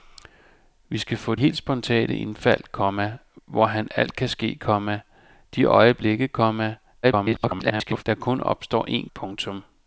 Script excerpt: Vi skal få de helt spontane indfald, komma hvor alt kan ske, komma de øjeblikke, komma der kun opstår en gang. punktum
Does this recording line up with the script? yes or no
no